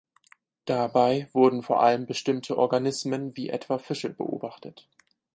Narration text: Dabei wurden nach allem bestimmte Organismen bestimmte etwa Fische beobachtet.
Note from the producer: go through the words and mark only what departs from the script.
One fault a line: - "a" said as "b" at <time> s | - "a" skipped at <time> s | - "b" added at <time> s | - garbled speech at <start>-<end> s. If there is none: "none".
- "nach" said as "vor" at 1.6 s
- "bestimmte" said as "wie" at 3.4 s